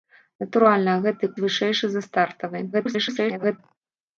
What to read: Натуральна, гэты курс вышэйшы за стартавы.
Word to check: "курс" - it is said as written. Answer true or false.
false